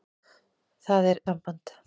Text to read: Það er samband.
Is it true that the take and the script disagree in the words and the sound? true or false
false